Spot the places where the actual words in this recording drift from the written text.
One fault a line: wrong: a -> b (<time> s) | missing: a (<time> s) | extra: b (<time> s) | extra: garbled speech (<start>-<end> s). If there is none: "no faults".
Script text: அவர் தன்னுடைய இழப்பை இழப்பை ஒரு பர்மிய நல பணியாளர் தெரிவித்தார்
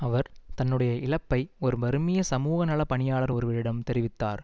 missing: இழப்பை (1.5 s)
extra: சமூக (2.2 s)
extra: ஒருவரிடம் (3.3 s)